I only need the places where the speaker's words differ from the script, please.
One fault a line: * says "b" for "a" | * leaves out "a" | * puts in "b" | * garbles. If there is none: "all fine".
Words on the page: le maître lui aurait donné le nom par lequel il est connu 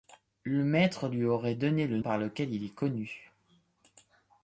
* leaves out "nom"